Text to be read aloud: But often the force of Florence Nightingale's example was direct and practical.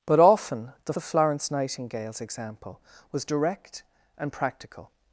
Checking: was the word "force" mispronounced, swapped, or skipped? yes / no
yes